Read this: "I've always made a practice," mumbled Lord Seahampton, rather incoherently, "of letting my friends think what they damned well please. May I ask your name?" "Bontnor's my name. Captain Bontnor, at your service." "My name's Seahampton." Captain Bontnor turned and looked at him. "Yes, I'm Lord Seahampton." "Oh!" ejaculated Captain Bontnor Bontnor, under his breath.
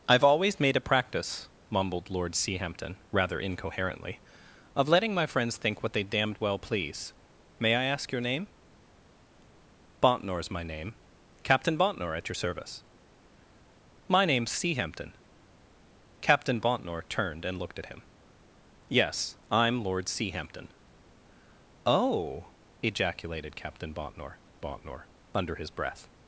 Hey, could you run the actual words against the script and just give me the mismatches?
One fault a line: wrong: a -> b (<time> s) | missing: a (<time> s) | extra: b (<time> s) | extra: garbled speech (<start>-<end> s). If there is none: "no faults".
no faults